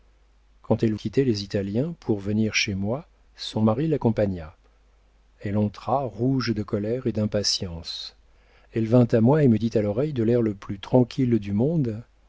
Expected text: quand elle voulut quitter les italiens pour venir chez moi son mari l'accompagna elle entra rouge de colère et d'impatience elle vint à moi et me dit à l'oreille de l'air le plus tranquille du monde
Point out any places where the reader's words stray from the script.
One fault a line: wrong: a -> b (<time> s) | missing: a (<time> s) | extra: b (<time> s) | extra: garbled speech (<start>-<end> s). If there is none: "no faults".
missing: voulut (0.9 s)